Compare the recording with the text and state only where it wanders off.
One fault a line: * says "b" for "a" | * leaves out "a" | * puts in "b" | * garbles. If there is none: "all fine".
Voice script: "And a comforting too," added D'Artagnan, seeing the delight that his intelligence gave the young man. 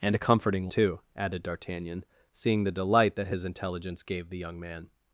all fine